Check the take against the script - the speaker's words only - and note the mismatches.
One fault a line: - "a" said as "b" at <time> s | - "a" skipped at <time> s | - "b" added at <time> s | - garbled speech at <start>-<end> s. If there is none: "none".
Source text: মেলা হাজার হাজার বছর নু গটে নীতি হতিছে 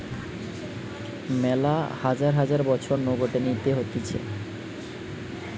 none